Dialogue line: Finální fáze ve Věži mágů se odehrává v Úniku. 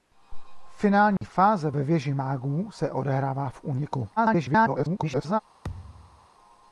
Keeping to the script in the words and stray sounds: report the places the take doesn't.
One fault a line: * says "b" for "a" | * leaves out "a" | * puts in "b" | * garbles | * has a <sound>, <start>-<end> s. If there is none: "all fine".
* has a dropout, 1.2-1.2 s
* garbles
* has a thud, 5.6-6.3 s